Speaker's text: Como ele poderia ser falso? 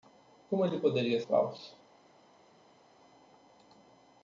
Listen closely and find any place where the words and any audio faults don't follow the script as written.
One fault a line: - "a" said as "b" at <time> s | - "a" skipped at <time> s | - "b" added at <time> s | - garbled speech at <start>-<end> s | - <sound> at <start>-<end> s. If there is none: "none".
- "ser" skipped at 1.2 s